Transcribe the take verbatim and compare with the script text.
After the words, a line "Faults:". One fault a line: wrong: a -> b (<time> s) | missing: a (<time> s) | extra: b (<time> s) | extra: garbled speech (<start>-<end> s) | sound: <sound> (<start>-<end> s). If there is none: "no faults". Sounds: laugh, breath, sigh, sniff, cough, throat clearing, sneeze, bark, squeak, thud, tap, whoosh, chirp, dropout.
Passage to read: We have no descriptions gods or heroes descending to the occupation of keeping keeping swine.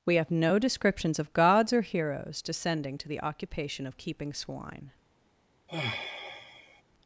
We have no descriptions of gods or heroes descending to the occupation of keeping swine.
Faults:
extra: of (1.2 s)
missing: keeping (4.3 s)
sound: sigh (5.7-6.8 s)